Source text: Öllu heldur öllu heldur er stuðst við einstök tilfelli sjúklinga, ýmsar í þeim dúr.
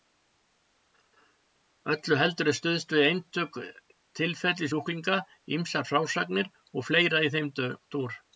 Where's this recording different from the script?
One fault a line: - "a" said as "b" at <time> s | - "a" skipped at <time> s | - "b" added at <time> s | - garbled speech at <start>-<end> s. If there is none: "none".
- "öllu heldur" skipped at 2.5 s
- "frásagnir og fleira" added at 5.9 s